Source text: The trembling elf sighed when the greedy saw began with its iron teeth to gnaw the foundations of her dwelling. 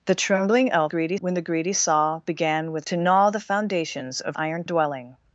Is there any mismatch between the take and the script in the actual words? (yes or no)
yes